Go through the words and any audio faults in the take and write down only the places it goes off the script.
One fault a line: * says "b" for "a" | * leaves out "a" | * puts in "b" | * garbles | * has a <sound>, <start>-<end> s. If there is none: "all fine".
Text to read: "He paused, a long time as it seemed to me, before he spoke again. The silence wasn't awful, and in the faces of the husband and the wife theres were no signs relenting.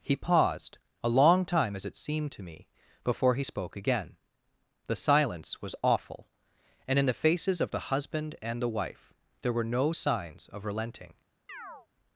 * says "was" for "wasn't"
* says "there" for "theres"
* puts in "of"
* has a chirp, 11.5-11.9 s